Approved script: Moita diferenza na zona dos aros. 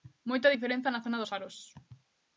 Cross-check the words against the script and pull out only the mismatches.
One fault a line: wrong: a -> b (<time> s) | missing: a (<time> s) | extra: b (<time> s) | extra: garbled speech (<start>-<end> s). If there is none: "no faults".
no faults